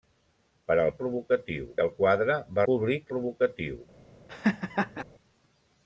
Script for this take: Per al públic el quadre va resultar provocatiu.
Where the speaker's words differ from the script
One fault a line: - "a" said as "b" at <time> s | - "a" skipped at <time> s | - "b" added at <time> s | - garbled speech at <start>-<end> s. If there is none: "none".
- "públic" said as "provocatiu" at 1.0 s
- "resultar" said as "públic" at 2.7 s